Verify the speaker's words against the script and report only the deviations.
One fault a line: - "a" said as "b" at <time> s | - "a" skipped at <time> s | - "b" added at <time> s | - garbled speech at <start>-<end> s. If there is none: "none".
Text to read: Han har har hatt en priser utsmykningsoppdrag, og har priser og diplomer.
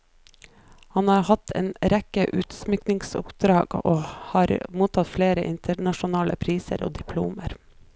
- "har" skipped at 1.2 s
- "priser" said as "rekke" at 1.9 s
- "mottatt flere internasjonale" added at 4.8 s